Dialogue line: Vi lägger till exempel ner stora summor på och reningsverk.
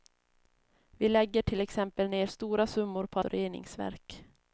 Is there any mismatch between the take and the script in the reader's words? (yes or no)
no